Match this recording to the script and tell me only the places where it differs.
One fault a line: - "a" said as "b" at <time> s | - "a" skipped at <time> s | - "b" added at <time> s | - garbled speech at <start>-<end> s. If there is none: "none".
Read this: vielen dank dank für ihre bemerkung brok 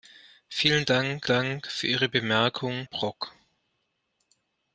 none